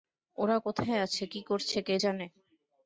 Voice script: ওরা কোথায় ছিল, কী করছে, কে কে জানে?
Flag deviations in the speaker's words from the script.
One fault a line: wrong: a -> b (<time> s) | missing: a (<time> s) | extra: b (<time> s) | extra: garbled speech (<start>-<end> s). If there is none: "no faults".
wrong: ছিল -> আছে (1.0 s)
missing: কে (2.0 s)